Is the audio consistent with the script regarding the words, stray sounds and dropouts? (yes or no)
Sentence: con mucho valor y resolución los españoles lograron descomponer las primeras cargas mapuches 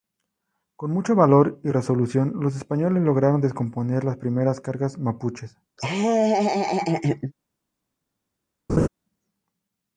no